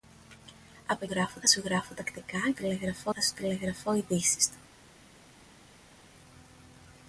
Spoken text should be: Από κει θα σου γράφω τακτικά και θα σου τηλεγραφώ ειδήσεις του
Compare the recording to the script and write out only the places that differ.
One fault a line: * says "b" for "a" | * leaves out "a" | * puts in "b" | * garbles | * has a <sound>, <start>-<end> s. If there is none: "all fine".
* says "γράφω" for "κει"
* says "τηλεγραφώ" for "και"